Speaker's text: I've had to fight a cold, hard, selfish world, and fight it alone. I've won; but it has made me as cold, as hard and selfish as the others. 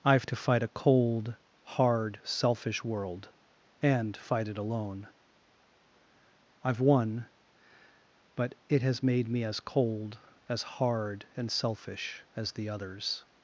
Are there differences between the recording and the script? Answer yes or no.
yes